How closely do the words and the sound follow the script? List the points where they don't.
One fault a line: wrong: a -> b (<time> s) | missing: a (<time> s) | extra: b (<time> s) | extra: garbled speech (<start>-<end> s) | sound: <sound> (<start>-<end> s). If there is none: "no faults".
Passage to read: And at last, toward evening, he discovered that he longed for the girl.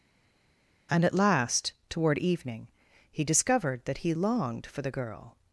no faults